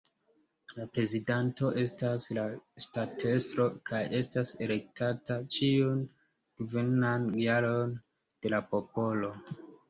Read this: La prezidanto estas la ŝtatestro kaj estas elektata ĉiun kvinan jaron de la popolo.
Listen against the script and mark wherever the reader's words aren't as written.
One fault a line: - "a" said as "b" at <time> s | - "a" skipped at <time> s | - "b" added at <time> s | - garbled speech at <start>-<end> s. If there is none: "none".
none